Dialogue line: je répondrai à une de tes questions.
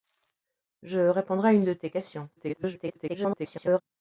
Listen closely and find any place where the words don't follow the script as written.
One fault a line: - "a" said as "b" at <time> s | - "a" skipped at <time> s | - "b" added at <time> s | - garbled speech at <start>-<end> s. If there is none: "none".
- garbled speech at 2.4-3.8 s